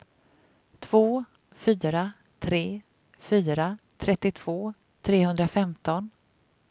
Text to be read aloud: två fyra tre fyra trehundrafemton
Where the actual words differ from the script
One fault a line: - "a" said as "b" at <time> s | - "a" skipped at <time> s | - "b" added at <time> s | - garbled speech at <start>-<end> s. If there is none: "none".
- "trettiotvå" added at 4.0 s